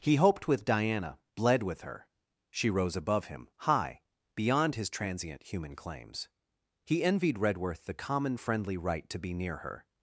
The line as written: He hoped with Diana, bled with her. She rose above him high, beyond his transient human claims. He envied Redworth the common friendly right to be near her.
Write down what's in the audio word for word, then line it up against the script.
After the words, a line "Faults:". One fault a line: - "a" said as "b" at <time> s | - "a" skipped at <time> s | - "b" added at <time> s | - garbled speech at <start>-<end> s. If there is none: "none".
He hoped with Diana, bled with her. She rose above him high, beyond his transient human claims. He envied Redworth the common friendly right to be near her.
Faults:
none